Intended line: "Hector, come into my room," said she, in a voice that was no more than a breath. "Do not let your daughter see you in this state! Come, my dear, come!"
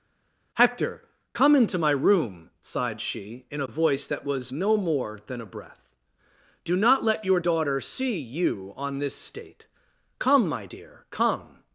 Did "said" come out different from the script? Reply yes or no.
yes